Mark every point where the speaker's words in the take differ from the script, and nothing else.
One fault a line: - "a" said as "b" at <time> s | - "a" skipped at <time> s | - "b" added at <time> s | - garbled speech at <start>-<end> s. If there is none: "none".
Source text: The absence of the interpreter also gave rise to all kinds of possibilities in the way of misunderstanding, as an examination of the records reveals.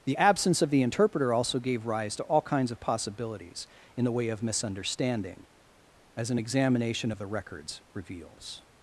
none